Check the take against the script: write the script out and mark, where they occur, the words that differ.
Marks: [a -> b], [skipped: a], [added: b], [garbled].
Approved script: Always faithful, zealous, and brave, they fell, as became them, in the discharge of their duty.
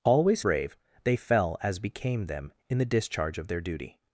Always [skipped: faithful, zealous, and] brave, they fell, as became them, in the discharge of their duty.